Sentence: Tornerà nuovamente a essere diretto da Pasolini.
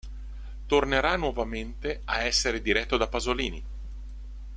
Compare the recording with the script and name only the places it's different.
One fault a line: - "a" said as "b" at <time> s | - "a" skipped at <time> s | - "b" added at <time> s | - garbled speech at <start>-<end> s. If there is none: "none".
none